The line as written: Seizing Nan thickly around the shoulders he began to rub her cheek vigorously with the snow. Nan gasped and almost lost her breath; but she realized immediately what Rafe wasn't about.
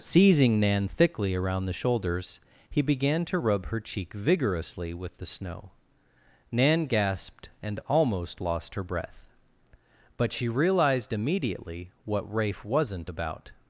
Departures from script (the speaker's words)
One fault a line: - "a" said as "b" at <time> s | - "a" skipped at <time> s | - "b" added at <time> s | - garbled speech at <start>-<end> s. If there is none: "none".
none